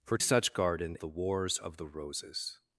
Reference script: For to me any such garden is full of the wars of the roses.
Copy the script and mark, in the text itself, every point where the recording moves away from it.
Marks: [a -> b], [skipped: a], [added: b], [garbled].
For [skipped: to me any] such garden [skipped: is full of] the wars of the roses.